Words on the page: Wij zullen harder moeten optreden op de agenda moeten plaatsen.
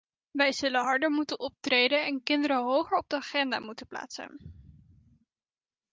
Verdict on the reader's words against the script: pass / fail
fail